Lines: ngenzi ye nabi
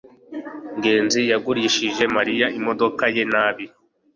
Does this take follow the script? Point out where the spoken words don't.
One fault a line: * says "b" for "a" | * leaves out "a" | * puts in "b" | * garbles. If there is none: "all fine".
* puts in "yagurishije mariya imodoka"